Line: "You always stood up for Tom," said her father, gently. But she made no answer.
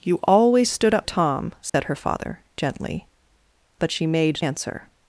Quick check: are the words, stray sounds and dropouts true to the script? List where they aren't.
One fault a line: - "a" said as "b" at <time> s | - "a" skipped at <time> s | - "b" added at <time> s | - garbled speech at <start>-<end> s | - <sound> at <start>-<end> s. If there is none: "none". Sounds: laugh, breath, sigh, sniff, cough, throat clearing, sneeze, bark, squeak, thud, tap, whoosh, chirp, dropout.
- "for" skipped at 1.1 s
- dropout at 1.7-1.7 s
- "no" skipped at 4.4 s